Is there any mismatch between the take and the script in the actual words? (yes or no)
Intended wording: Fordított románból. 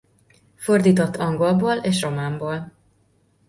yes